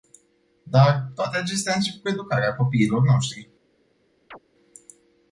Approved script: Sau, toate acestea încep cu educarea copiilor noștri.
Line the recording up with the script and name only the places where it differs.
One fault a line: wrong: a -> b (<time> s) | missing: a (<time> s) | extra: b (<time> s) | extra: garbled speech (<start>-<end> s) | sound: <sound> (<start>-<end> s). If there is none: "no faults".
wrong: Sau -> Dar (0.6 s)
sound: chirp (4.3-4.4 s)